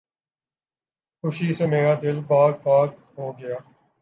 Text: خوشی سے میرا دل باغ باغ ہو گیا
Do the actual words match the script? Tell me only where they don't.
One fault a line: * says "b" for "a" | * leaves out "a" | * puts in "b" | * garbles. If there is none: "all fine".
all fine